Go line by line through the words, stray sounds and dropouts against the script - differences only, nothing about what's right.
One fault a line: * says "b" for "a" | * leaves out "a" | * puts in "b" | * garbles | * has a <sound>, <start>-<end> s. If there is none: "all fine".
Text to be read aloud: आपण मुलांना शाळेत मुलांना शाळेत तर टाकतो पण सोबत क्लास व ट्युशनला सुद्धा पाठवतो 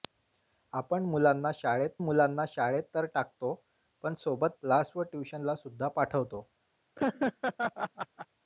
* has a laugh, 7.0-8.3 s